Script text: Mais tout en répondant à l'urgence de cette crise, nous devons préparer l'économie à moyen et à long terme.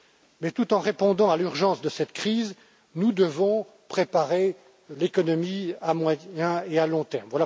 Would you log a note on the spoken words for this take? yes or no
no